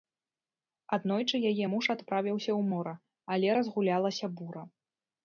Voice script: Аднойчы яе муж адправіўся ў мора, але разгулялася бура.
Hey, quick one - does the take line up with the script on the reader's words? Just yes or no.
yes